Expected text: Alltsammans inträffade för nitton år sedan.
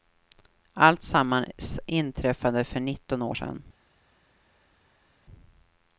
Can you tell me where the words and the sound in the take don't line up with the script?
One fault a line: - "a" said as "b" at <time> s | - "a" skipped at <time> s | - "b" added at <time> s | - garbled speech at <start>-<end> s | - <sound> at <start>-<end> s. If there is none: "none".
none